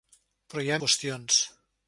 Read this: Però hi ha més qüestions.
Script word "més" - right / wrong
wrong